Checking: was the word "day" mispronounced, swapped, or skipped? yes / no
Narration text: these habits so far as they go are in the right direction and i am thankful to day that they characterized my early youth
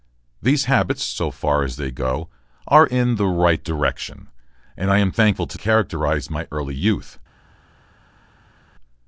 yes